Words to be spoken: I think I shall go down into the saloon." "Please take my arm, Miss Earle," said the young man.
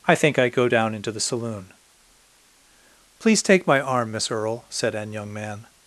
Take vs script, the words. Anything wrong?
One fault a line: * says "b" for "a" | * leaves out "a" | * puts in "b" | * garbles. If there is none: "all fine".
* leaves out "shall"
* says "an" for "the"